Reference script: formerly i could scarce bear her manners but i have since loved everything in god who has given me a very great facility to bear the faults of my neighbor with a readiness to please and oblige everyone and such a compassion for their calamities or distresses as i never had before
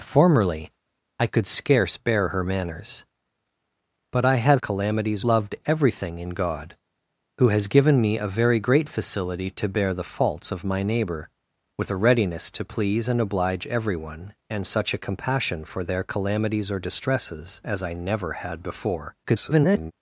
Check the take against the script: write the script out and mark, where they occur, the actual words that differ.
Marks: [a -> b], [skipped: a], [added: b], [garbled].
formerly i could scarce bear her manners but i have [since -> calamities] loved everything in god who has given me a very great facility to bear the faults of my neighbor with a readiness to please and oblige everyone and such a compassion for their calamities or distresses as i never had before [garbled]